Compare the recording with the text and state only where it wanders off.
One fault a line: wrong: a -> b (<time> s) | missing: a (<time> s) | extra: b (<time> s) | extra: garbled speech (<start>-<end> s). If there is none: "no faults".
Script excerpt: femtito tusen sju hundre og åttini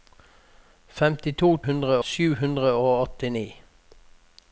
wrong: tusen -> hundre (1.7 s)